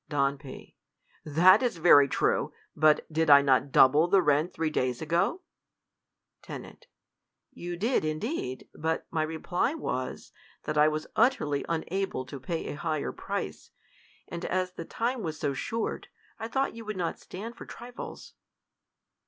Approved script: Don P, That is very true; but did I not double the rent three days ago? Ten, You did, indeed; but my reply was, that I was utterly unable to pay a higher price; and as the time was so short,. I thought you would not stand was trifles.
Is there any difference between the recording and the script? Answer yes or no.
yes